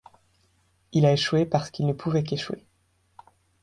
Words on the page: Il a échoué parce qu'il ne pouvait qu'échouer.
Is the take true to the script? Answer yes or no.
yes